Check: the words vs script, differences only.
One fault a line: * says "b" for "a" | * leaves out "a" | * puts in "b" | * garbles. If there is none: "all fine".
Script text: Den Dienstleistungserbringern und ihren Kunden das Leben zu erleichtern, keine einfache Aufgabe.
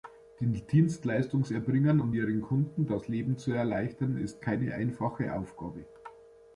* puts in "ist"